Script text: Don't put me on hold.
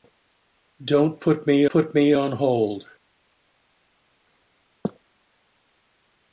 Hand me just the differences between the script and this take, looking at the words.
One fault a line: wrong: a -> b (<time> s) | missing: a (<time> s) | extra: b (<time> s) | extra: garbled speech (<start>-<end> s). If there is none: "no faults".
extra: put me (1.7 s)